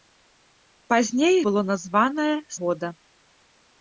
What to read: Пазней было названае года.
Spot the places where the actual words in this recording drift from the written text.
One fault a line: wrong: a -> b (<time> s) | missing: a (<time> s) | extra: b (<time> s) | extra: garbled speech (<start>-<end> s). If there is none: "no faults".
no faults